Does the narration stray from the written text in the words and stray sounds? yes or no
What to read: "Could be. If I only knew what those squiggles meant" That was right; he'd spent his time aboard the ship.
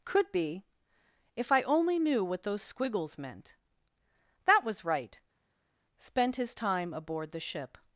yes